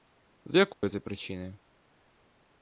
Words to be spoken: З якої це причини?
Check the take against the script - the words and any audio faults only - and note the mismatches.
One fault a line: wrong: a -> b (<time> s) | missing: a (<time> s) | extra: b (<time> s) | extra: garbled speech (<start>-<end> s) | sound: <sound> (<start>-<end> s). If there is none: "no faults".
sound: dropout (0.7-0.8 s)